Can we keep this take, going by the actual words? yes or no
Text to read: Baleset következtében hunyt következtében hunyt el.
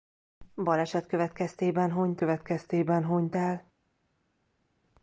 yes